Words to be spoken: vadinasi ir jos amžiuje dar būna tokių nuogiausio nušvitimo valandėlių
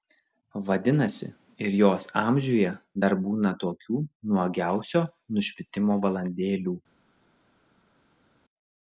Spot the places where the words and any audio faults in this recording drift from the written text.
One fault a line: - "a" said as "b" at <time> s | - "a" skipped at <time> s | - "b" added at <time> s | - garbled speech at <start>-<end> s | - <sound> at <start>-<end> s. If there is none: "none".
none